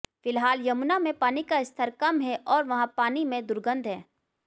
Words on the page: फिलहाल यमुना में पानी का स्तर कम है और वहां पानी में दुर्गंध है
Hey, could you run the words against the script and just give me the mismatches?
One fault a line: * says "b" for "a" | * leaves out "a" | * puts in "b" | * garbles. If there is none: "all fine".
all fine